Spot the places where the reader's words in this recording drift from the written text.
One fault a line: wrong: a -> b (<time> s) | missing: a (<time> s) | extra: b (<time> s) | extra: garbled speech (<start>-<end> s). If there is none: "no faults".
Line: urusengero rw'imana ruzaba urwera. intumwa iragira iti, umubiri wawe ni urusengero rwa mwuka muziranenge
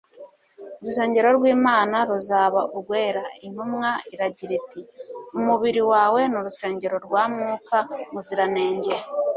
no faults